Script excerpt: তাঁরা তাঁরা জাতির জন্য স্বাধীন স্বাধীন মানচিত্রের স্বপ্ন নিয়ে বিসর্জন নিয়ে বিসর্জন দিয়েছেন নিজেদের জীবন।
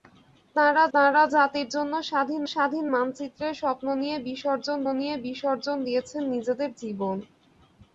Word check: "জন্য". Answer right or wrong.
right